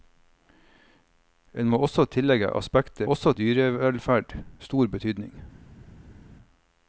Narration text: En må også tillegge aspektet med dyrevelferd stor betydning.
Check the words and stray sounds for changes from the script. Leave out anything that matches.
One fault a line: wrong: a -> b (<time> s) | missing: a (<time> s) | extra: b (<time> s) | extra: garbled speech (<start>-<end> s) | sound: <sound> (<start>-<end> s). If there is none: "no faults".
wrong: med -> også (3.0 s)